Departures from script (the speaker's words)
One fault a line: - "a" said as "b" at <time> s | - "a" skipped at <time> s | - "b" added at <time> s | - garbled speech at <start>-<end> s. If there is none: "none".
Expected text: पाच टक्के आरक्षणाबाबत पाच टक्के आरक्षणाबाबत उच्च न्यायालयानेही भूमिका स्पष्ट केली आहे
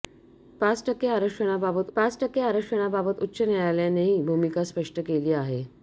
none